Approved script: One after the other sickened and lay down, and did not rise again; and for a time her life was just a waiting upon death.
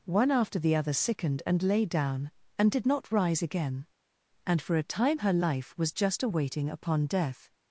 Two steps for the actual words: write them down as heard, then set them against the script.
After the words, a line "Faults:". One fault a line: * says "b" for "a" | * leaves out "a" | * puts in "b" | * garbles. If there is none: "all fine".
One after the other sickened and lay down, and did not rise again; and for a time her life was just a waiting upon death.
Faults:
all fine